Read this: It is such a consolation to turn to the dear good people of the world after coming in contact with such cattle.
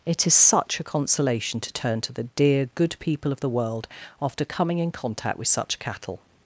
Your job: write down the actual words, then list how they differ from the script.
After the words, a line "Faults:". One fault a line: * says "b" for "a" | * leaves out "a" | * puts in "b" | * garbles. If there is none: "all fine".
It is such a consolation to turn to the dear good people of the world after coming in contact with such cattle.
Faults:
all fine